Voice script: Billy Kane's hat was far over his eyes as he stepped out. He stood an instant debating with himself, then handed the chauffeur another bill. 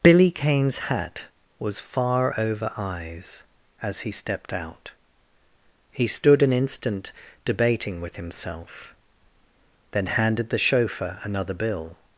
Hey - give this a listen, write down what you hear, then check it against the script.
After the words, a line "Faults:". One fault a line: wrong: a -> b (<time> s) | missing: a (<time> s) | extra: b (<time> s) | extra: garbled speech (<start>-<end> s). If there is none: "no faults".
Billy Kane's hat was far over eyes as he stepped out. He stood an instant debating with himself, then handed the chauffeur another bill.
Faults:
missing: his (2.7 s)